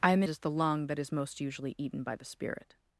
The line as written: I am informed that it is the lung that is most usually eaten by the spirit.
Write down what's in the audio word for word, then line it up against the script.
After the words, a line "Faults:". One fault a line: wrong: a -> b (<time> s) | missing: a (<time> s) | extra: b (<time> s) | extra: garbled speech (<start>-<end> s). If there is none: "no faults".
I am is the lung that is most usually eaten by the spirit.
Faults:
missing: informed that it (0.2 s)